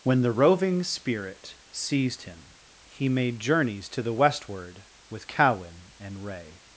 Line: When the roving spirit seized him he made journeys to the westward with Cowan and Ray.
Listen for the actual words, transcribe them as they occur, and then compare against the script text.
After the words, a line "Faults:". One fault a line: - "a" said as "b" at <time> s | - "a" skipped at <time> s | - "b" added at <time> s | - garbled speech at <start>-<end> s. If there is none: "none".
When the roving spirit seized him he made journeys to the westward with Cowan and Ray.
Faults:
none